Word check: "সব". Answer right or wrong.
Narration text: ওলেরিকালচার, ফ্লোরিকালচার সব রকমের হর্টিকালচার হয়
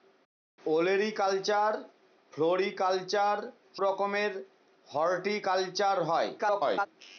wrong